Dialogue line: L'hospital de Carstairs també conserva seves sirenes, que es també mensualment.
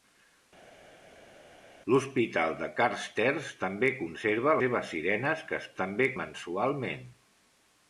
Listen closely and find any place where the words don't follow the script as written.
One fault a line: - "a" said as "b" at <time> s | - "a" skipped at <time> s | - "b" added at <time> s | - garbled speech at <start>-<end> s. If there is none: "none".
none